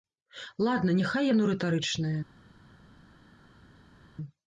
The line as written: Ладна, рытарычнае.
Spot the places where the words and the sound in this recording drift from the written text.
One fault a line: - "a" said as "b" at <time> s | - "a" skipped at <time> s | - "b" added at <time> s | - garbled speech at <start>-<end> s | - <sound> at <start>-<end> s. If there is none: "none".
- "няхай яно" added at 1.0 s